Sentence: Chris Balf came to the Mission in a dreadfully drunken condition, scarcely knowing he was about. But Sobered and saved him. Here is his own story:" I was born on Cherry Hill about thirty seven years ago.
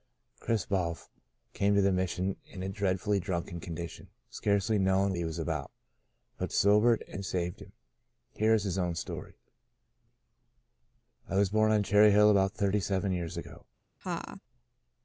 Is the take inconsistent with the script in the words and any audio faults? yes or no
yes